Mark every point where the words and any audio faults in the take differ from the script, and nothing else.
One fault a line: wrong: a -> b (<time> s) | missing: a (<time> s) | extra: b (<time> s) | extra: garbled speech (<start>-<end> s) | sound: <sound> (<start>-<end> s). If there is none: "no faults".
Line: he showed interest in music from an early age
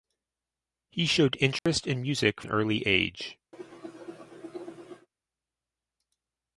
sound: dropout (1.6-1.7 s)
missing: from (2.4 s)
sound: cough (3.5-5.1 s)